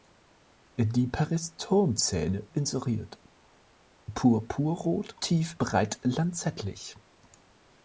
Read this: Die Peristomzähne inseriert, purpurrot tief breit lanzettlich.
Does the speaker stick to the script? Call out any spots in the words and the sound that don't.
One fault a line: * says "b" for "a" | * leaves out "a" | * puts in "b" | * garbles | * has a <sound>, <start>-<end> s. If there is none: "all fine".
all fine